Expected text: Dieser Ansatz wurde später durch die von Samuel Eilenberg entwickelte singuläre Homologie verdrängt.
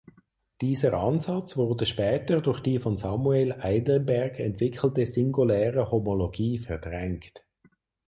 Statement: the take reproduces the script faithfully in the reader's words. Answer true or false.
true